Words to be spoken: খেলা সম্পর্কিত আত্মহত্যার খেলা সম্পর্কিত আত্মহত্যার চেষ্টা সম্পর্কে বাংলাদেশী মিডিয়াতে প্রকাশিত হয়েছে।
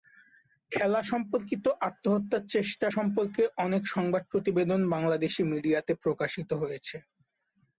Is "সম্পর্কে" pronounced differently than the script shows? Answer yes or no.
yes